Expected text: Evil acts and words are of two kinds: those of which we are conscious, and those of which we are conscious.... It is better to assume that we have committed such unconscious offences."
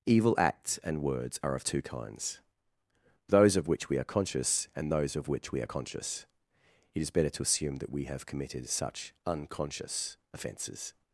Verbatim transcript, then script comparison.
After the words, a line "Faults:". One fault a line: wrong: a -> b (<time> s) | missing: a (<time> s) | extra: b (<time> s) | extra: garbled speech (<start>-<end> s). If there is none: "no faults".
Evil acts and words are of two kinds: those of which we are conscious, and those of which we are conscious.... It is better to assume that we have committed such unconscious offences."
Faults:
no faults